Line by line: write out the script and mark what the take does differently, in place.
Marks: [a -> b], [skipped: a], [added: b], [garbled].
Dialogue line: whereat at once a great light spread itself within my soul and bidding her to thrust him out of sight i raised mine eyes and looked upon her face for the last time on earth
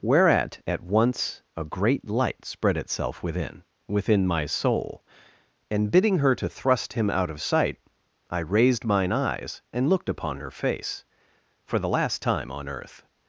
whereat at once a great light spread itself within [added: within] my soul and bidding her to thrust him out of sight i raised mine eyes and looked upon her face for the last time on earth